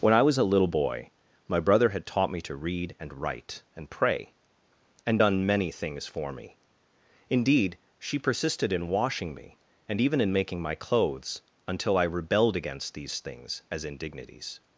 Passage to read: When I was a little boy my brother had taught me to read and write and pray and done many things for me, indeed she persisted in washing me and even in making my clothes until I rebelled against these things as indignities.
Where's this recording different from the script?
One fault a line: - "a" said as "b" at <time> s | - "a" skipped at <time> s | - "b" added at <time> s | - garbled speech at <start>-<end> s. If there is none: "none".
none